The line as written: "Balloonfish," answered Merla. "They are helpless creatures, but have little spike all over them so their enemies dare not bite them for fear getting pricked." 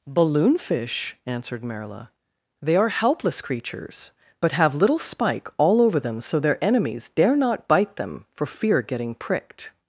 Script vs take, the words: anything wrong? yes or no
no